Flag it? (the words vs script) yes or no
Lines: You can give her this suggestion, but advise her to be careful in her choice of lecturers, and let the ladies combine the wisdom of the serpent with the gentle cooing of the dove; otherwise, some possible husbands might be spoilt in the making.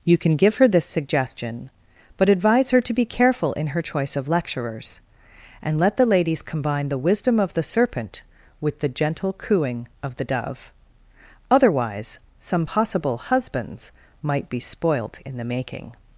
no